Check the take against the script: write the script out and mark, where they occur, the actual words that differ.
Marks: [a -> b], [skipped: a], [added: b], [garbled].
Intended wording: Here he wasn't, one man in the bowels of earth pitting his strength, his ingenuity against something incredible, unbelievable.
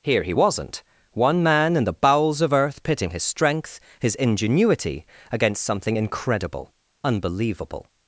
Here he wasn't, one man in the bowels of earth pitting his strength, his ingenuity against something incredible, unbelievable.